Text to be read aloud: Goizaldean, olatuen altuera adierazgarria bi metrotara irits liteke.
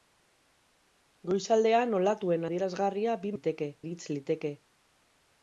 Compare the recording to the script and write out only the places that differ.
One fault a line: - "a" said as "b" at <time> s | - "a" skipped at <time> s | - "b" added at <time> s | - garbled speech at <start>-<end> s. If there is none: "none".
- "altuera" skipped at 2.5 s
- "metrotara" said as "liteke" at 3.3 s